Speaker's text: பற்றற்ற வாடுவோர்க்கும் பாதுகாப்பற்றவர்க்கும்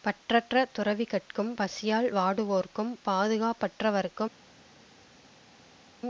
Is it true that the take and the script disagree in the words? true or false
true